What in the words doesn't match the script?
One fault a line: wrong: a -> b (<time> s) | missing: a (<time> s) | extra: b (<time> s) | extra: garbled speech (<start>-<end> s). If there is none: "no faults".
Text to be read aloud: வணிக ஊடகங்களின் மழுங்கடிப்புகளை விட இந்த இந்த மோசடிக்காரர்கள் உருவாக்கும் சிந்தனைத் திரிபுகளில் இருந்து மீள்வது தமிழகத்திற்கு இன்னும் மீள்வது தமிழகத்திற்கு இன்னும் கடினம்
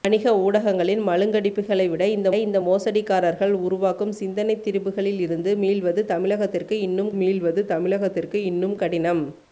no faults